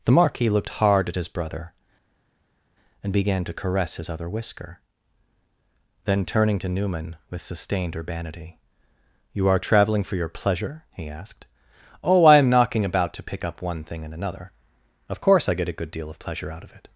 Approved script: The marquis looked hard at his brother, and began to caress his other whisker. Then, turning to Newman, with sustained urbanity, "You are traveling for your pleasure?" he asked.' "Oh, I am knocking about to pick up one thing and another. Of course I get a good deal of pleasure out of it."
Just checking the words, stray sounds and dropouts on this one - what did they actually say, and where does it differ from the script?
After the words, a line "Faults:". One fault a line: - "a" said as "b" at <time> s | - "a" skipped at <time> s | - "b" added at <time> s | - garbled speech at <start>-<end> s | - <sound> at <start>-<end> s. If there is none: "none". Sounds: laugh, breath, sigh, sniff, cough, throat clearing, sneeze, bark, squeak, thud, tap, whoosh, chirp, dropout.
The marquis looked hard at his brother, and began to caress his other whisker. Then, turning to Newman, with sustained urbanity, "You are traveling for your pleasure?" he asked.' "Oh, I am knocking about to pick up one thing and another. Of course I get a good deal of pleasure out of it."
Faults:
none